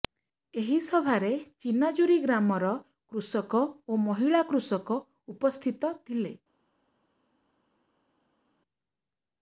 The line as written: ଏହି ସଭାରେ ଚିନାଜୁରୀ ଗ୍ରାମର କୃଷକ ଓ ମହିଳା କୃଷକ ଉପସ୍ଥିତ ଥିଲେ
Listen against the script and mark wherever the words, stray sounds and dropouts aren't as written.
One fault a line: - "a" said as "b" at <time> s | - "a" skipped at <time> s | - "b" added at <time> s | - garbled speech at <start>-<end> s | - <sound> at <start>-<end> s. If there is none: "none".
none